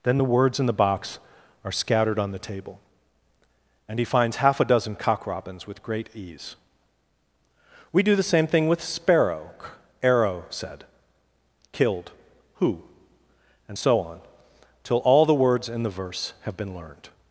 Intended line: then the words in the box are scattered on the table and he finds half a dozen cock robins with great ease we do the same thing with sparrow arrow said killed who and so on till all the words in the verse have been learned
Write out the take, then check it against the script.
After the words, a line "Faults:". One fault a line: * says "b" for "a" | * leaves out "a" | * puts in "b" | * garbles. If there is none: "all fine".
then the words in the box are scattered on the table and he finds half a dozen cock robins with great ease we do the same thing with sparrow arrow said killed who and so on till all the words in the verse have been learned
Faults:
all fine